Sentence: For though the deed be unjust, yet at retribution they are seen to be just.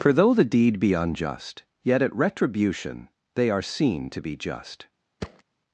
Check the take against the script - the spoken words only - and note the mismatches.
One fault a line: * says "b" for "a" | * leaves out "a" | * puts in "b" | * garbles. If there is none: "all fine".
all fine